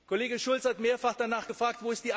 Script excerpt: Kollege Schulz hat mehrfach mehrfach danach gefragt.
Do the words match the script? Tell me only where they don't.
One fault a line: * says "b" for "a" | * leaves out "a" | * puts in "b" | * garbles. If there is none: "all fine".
* leaves out "mehrfach"